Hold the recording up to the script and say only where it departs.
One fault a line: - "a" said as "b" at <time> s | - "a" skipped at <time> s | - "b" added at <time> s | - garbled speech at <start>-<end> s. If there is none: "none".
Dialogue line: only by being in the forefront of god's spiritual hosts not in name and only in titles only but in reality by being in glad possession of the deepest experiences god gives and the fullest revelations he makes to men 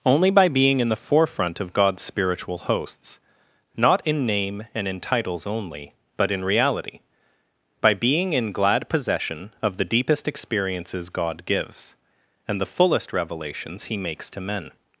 - "only" skipped at 4.9 s